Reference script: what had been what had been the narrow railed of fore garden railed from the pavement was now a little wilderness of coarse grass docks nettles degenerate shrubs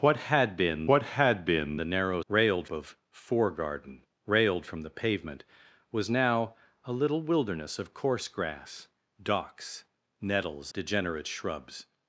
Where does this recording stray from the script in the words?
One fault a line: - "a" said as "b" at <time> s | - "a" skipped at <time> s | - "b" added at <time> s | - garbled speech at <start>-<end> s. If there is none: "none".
none